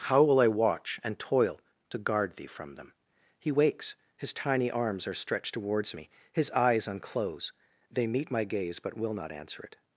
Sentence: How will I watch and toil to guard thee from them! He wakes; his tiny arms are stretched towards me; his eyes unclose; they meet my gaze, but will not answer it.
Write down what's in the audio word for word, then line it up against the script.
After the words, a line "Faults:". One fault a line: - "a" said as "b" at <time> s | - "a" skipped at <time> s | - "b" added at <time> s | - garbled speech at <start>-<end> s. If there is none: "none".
How will I watch and toil to guard thee from them! He wakes; his tiny arms are stretched towards me; his eyes unclose; they meet my gaze, but will not answer it.
Faults:
none